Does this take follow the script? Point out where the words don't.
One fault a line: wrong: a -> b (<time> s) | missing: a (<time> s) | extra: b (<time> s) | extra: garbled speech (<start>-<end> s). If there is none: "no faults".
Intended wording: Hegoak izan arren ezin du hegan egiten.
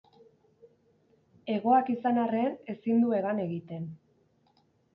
no faults